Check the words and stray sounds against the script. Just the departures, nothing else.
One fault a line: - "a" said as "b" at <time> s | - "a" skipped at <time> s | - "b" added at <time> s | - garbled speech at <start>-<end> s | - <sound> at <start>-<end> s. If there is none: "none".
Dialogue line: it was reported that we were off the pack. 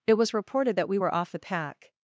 none